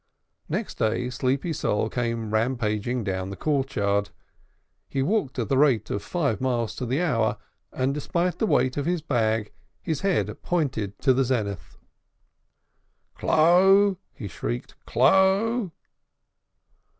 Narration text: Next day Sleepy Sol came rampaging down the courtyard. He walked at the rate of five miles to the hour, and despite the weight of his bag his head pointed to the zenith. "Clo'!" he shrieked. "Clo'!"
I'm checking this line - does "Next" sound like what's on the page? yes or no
yes